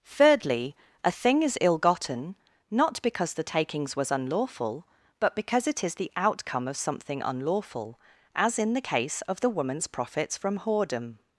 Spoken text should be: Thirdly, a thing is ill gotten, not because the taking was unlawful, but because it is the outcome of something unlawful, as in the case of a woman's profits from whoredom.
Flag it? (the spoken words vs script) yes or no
yes